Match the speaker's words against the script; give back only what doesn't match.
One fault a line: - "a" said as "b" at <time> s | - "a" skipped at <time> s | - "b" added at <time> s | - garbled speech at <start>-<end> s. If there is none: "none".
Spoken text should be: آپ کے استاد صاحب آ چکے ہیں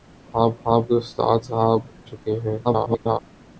- "آپ" added at 0.6 s
- "آ" skipped at 1.8 s
- garbled speech at 2.6-3.2 s